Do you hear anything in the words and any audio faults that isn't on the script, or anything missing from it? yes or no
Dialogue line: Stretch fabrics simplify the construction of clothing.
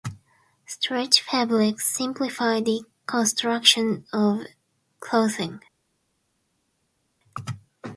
no